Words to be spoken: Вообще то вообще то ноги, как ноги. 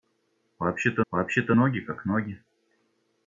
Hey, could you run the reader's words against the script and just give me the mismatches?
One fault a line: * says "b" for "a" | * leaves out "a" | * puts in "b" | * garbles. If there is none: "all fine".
all fine